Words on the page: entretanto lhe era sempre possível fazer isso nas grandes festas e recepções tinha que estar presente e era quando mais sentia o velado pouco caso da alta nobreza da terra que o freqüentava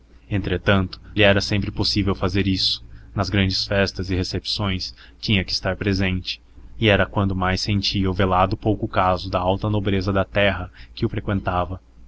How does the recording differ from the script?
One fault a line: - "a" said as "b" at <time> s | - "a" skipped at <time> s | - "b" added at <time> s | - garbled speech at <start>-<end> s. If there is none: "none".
none